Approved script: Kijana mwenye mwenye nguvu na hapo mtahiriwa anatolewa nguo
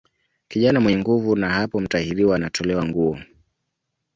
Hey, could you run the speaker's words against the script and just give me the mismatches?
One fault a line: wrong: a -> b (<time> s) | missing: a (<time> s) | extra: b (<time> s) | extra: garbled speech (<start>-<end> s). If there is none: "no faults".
missing: mwenye (1.0 s)